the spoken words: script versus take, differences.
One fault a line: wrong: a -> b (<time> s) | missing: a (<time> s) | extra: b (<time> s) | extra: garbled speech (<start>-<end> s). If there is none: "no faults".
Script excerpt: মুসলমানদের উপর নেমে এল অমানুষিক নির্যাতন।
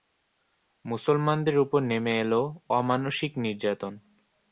no faults